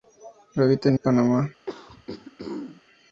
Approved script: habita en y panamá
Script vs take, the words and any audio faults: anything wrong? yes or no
yes